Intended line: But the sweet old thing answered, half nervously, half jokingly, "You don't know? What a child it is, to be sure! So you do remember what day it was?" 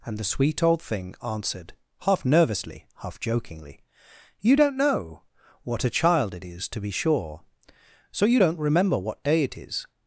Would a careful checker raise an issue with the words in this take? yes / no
yes